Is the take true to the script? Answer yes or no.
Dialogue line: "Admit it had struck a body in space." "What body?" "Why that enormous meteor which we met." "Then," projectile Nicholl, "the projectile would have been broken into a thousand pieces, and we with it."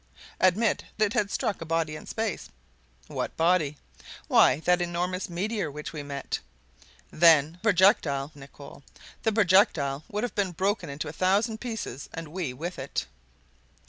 yes